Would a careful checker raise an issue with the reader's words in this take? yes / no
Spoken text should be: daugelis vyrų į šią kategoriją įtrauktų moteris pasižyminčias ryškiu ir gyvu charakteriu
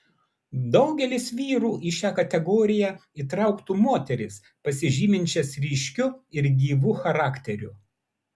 no